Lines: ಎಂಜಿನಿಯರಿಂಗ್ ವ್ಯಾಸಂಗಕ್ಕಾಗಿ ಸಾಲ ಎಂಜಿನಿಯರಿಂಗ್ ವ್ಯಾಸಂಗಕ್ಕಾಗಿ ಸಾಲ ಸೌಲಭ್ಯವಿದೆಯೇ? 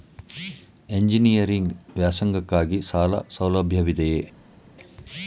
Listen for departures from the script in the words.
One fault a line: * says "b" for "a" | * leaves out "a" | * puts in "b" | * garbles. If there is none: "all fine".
* leaves out "ಎಂಜಿನಿಯರಿಂಗ್ ವ್ಯಾಸಂಗಕ್ಕಾಗಿ ಸಾಲ"